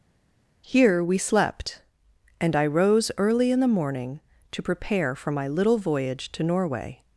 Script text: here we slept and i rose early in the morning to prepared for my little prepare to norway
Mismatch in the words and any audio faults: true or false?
true